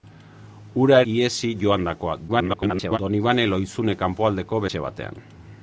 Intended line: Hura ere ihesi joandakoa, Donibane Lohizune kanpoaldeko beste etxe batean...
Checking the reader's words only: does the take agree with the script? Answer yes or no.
no